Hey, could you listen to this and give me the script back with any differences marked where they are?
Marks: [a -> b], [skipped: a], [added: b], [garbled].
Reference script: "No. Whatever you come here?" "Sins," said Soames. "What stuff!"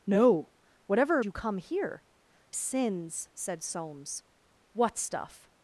"No. Whatever you come here?" "Sins," said Soames. "What stuff!"